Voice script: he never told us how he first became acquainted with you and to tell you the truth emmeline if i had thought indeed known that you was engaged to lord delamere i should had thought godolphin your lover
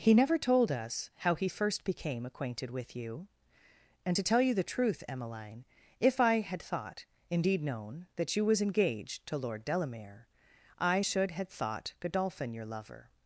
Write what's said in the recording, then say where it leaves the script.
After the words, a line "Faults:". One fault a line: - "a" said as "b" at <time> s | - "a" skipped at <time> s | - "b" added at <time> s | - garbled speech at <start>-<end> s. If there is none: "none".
he never told us how he first became acquainted with you and to tell you the truth emmeline if i had thought indeed known that you was engaged to lord delamere i should had thought godolphin your lover
Faults:
none